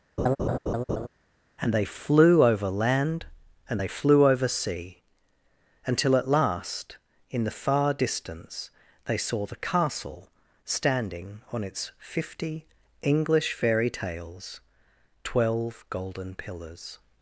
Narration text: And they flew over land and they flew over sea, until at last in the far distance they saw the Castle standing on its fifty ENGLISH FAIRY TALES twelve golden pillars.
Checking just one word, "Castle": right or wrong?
right